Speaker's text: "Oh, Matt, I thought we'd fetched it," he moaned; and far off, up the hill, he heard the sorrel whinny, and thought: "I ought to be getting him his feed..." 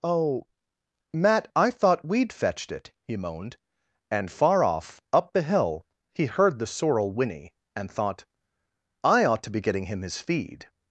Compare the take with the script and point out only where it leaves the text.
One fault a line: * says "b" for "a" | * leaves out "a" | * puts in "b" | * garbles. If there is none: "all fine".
all fine